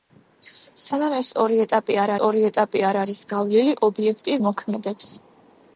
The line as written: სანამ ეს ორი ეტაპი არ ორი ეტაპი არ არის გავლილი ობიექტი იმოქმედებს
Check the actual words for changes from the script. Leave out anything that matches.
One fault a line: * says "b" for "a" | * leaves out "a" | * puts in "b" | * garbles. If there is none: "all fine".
all fine